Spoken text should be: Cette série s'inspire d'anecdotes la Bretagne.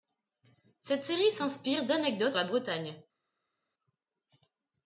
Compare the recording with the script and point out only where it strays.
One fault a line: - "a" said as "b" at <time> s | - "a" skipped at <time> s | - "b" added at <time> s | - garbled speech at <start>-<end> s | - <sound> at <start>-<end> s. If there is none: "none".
none